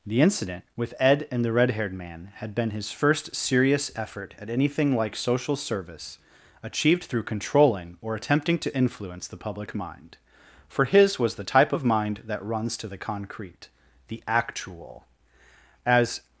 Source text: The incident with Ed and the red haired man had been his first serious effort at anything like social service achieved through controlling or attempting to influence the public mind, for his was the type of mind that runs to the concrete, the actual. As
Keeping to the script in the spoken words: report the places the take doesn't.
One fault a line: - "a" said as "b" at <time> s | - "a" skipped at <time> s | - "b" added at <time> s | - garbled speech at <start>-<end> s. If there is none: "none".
none